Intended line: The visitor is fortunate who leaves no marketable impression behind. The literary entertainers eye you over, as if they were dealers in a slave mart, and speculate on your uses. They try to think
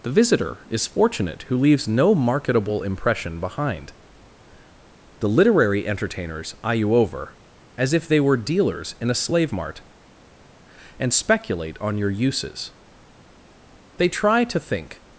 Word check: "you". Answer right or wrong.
right